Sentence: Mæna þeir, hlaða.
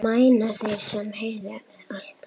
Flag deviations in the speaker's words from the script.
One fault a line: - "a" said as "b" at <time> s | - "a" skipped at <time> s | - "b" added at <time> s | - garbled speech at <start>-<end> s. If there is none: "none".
- "sem heyi" added at 0.9 s